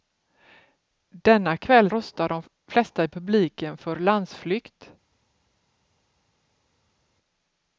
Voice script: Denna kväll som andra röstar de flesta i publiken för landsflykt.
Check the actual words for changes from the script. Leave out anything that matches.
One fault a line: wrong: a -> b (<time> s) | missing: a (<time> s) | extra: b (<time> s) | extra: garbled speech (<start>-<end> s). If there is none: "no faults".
missing: som andra (1.9 s)